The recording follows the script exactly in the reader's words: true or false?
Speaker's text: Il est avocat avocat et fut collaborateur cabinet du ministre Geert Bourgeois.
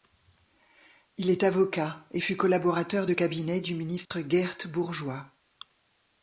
false